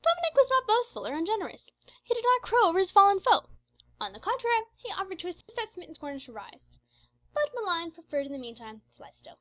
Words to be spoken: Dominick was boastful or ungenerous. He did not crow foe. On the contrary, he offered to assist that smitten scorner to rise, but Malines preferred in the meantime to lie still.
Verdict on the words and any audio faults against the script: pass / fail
fail